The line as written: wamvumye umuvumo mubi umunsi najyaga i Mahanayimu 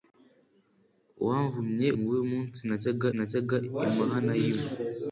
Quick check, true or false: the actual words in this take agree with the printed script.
false